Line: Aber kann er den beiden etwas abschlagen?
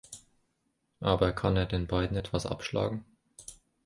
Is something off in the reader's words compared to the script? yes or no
no